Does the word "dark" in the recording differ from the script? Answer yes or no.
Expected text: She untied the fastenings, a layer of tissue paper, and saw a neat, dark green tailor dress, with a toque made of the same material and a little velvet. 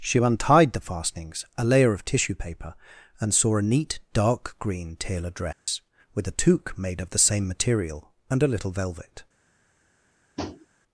no